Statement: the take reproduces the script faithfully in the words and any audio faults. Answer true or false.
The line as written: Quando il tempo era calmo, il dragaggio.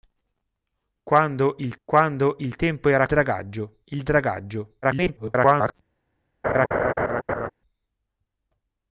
false